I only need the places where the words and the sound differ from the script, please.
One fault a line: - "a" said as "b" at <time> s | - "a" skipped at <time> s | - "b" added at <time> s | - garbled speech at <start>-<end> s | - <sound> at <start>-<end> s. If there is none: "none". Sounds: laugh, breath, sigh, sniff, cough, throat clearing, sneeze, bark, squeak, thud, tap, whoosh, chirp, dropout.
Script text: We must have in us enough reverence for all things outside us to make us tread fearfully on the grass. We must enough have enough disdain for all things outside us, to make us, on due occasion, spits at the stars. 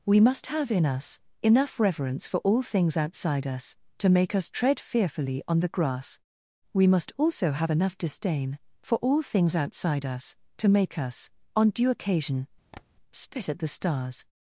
- "enough" said as "also" at 7.2 s
- tap at 12.7-12.8 s
- "spits" said as "spit" at 13.1 s